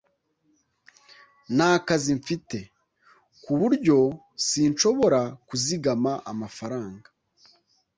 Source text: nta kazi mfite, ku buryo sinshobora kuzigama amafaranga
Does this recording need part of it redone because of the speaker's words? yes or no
no